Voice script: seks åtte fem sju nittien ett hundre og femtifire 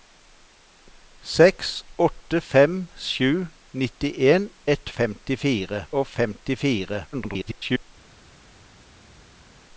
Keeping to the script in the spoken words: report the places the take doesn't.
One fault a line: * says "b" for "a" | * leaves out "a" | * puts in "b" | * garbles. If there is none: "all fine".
* says "femtifire" for "hundre"
* garbles